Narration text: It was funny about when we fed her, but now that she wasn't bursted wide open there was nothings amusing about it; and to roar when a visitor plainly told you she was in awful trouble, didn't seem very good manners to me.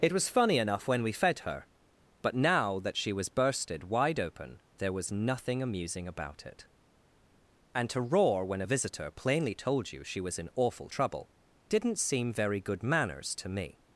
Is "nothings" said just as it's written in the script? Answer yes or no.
no